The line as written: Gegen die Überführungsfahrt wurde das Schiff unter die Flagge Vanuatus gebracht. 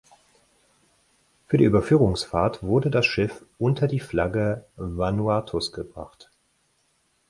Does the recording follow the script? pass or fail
fail